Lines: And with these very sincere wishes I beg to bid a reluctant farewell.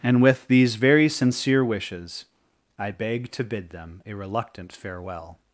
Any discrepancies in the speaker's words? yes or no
yes